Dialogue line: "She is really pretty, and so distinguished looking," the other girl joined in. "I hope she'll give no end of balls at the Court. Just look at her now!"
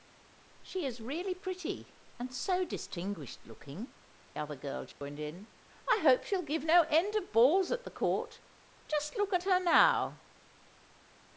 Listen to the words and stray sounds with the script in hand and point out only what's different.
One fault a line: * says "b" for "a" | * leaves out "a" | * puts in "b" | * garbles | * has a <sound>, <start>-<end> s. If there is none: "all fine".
* leaves out "the"
* has a dropout, 4.9-5.0 s